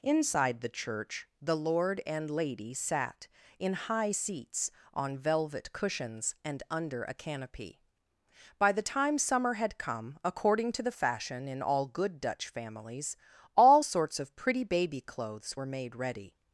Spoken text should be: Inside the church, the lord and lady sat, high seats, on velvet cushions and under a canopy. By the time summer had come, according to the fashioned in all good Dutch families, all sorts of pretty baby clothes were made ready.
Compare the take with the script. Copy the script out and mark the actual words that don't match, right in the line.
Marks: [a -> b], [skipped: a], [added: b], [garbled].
Inside the church, the lord and lady sat, [added: in] high seats, on velvet cushions and under a canopy. By the time summer had come, according to the [fashioned -> fashion] in all good Dutch families, all sorts of pretty baby clothes were made ready.